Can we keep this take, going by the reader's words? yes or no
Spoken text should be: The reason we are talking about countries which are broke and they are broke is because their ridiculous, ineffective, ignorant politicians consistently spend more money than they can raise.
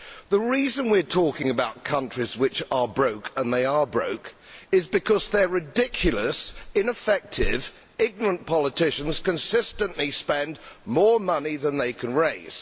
yes